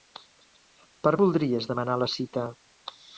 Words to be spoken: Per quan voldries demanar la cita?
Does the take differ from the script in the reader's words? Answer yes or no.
yes